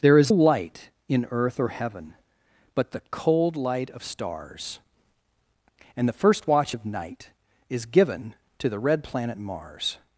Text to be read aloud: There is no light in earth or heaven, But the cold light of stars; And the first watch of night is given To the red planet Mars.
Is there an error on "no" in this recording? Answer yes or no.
yes